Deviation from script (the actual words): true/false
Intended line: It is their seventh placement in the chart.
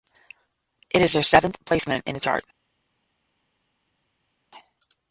false